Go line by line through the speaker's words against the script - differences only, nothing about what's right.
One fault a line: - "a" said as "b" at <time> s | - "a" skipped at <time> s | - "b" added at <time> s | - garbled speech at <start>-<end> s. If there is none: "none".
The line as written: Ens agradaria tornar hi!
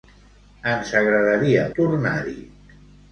none